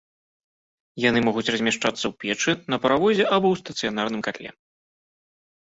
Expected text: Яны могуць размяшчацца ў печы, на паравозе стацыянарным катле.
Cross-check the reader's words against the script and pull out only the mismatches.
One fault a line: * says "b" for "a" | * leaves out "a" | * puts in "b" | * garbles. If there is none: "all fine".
* puts in "або ў"